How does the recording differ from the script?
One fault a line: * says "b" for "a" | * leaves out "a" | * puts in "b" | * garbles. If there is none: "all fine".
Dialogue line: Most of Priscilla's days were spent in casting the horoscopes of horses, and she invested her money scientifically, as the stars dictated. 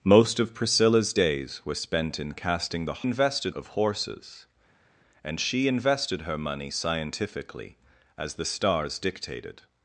* says "invested" for "horoscopes"